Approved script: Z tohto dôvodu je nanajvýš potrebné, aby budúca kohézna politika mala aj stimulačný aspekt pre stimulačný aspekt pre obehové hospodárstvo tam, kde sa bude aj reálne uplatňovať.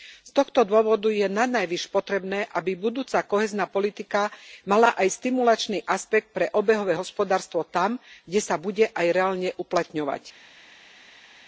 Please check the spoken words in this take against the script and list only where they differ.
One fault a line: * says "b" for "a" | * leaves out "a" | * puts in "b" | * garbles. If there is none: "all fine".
* leaves out "stimulačný aspekt pre"